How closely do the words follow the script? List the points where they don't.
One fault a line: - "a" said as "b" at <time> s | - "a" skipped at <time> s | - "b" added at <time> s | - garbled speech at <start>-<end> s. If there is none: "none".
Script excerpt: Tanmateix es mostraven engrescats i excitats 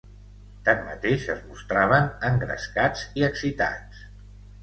none